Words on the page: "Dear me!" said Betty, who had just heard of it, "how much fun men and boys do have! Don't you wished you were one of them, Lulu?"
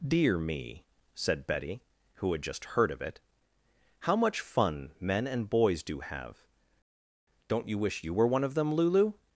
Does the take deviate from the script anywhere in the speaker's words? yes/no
yes